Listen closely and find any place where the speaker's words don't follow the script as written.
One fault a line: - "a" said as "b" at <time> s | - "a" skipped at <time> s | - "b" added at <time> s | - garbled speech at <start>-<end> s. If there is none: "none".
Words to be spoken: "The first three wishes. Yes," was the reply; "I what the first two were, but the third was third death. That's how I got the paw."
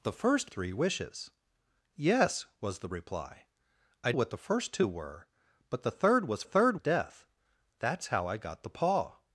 none